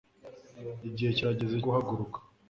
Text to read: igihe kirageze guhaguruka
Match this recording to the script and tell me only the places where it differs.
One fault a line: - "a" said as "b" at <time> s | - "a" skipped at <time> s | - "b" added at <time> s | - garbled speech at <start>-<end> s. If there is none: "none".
none